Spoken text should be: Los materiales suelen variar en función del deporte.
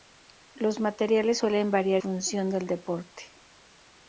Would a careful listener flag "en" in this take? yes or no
yes